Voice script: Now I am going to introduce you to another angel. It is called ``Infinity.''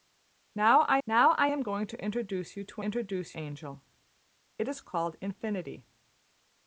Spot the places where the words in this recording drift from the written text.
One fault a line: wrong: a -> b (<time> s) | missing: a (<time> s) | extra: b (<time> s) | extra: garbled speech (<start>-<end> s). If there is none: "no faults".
extra: now I (1.1 s)
wrong: another -> introduce (2.8 s)